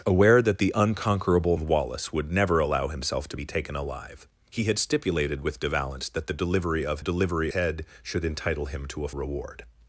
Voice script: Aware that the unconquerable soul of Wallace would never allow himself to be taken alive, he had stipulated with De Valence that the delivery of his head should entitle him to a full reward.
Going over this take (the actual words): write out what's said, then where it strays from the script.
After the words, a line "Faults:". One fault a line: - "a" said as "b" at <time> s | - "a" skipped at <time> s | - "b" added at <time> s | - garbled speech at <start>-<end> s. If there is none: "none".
Aware that the unconquerable of Wallace would never allow himself to be taken alive, he had stipulated with De Valence that the delivery of delivery head should entitle him to a reward.
Faults:
- "soul" skipped at 1.6 s
- "his" said as "delivery" at 7.0 s
- "full" skipped at 9.1 s